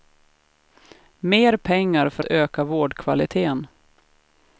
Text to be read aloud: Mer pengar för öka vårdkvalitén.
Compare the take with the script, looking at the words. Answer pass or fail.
pass